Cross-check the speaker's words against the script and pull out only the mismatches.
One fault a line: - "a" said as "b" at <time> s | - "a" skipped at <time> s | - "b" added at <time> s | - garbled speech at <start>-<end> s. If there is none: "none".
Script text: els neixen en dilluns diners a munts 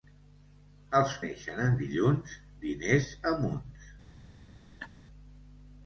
none